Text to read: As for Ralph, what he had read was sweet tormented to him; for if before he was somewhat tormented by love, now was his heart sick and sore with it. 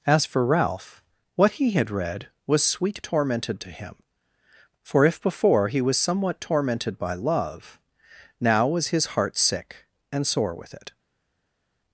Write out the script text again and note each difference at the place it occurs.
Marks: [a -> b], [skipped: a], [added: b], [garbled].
As for Ralph, what he had read was sweet tormented to him; for if before he was somewhat tormented by love, now was his heart sick and sore with it.